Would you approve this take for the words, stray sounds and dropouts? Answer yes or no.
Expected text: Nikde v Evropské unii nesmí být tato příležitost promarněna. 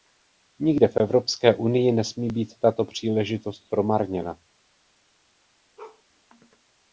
no